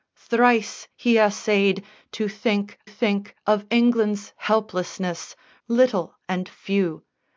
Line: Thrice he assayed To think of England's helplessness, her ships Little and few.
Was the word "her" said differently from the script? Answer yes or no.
yes